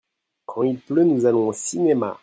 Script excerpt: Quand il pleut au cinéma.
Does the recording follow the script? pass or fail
fail